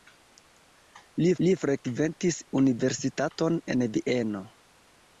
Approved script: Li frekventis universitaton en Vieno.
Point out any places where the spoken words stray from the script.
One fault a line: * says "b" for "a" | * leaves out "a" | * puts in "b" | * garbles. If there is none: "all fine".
* puts in "li"